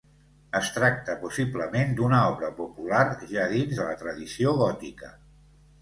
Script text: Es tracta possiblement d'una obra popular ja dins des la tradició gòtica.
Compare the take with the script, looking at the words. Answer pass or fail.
fail